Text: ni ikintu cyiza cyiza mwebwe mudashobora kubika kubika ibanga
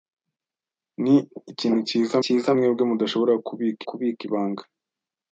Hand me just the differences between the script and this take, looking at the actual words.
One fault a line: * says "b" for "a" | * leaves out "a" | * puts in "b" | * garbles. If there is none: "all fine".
all fine